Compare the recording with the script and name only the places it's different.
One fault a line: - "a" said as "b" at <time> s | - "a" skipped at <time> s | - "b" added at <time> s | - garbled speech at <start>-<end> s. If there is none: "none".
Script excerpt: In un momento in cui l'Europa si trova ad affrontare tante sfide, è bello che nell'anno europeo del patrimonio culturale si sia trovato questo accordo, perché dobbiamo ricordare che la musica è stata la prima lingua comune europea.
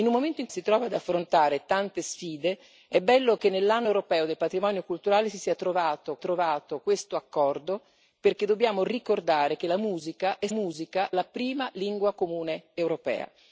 - "cui l'Europa" skipped at 0.5 s
- "trovato" added at 6.2 s
- "stata" said as "musica" at 10.5 s